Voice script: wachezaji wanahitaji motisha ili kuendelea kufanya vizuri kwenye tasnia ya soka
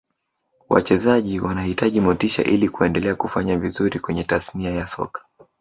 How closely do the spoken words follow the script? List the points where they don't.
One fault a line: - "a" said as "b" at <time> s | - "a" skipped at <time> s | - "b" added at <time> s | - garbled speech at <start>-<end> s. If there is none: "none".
none